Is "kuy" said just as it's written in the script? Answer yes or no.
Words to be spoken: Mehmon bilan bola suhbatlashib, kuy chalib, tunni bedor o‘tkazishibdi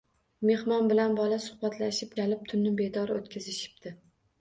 no